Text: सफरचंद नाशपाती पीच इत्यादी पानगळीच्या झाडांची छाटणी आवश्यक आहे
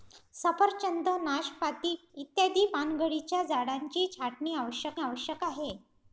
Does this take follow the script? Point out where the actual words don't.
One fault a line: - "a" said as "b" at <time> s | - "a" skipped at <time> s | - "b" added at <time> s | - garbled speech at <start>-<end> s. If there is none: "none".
- "पीच" skipped at 1.9 s
- "आवश्यक" added at 5.0 s